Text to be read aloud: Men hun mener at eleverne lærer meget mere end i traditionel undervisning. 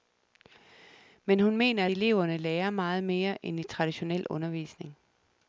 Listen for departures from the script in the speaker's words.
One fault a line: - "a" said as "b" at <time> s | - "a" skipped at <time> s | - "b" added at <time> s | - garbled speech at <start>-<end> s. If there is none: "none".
- "at" skipped at 1.9 s